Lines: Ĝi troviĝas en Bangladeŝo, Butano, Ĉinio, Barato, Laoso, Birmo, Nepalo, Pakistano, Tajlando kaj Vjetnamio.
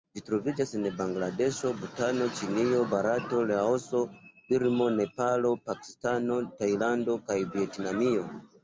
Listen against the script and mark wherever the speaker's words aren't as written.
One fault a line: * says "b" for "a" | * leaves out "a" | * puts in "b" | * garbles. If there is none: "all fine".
all fine